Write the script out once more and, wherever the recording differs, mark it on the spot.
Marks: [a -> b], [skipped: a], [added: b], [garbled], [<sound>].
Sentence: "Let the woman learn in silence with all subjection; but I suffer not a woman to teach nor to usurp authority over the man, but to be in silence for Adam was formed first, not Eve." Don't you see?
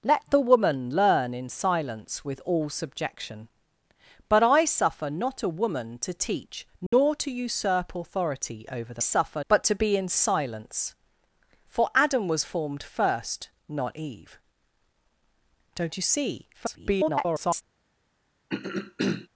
"Let the woman learn in silence with all subjection; but I suffer not a woman to teach nor [dropout] to usurp authority over the [man, -> suffer] but to be in silence for Adam was formed first, not Eve." Don't you see? [garbled] [throat clearing]